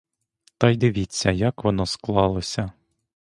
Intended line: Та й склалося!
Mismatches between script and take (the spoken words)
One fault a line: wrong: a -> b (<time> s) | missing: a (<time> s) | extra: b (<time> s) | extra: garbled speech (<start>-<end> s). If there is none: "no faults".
extra: дивіться як воно (0.7 s)